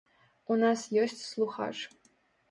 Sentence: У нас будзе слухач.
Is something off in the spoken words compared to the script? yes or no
yes